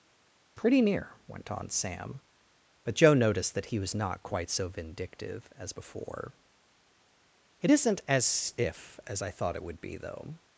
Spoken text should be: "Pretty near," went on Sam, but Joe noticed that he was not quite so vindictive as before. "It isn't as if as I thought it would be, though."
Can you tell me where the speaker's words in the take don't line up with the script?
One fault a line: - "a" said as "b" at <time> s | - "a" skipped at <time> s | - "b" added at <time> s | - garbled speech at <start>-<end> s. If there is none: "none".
none